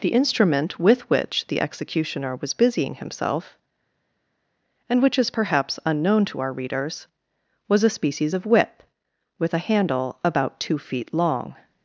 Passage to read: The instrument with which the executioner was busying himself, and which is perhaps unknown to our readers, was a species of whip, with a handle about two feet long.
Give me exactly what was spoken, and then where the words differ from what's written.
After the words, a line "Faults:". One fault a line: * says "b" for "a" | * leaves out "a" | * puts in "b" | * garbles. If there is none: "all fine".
The instrument with which the executioner was busying himself, and which is perhaps unknown to our readers, was a species of whip, with a handle about two feet long.
Faults:
all fine